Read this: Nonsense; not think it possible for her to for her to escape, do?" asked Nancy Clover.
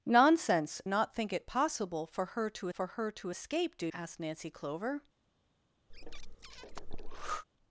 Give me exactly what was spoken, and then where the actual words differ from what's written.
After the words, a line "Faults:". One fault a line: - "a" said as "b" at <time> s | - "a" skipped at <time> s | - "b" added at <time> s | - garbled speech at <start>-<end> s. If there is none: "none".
Nonsense; not think it possible for her to for her to escape, do?" asked Nancy Clover.
Faults:
none